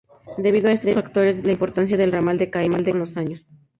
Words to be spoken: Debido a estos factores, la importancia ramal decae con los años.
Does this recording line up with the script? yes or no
no